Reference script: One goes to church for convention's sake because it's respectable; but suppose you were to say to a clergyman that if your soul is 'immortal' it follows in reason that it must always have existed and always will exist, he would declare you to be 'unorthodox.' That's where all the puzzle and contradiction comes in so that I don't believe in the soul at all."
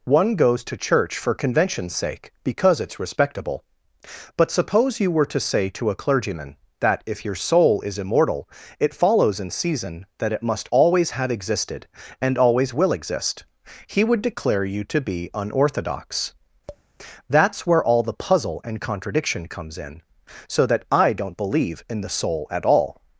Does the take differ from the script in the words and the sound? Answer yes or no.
yes